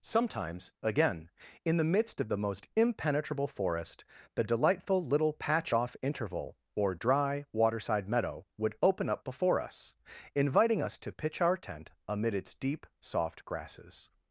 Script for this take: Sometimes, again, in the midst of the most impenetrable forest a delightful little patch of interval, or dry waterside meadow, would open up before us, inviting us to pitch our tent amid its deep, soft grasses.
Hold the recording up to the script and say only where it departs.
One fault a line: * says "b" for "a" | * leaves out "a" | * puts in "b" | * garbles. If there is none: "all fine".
* says "the" for "a"
* says "off" for "of"